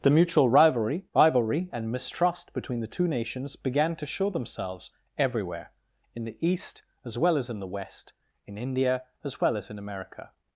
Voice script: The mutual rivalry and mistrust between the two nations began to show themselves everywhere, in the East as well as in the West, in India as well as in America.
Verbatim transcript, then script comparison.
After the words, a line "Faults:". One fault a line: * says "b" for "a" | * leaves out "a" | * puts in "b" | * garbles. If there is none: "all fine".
The mutual rivalry rivalry and mistrust between the two nations began to show themselves everywhere, in the East as well as in the West, in India as well as in America.
Faults:
* puts in "rivalry"